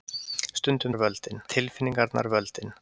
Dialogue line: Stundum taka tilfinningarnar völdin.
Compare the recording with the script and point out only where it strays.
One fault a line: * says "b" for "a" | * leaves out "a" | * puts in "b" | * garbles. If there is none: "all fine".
* says "völdin" for "taka"